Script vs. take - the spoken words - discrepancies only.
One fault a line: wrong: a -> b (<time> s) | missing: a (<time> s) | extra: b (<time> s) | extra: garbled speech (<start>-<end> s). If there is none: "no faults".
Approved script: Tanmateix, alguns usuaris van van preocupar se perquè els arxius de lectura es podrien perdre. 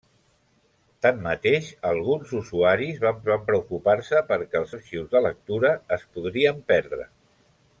no faults